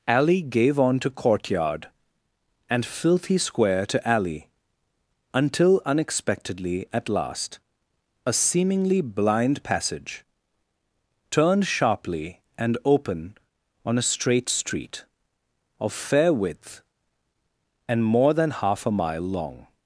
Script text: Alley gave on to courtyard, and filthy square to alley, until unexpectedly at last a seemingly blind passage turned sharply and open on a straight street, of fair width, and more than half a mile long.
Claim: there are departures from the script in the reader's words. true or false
false